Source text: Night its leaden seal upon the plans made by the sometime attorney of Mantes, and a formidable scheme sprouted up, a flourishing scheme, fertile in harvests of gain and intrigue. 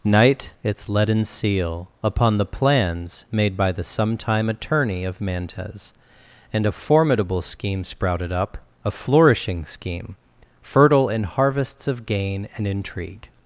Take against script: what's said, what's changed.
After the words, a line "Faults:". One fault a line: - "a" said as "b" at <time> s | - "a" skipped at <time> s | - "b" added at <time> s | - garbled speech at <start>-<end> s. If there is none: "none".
Night its leaden seal upon the plans made by the sometime attorney of Mantes, and a formidable scheme sprouted up, a flourishing scheme, fertile in harvests of gain and intrigue.
Faults:
none